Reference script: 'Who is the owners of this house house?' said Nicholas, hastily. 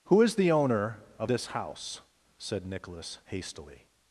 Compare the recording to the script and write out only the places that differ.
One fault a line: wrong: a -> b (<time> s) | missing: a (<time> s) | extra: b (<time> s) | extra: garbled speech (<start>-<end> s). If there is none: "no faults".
wrong: owners -> owner (0.5 s)
missing: house (2.0 s)